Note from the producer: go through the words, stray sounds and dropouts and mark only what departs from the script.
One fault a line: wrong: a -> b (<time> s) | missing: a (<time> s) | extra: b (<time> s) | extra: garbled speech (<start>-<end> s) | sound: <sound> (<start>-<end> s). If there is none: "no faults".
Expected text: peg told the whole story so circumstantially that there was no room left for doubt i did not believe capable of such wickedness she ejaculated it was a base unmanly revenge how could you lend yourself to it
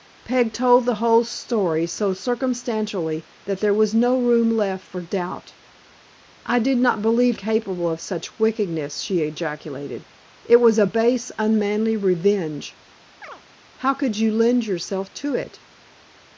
sound: chirp (13.2-13.4 s)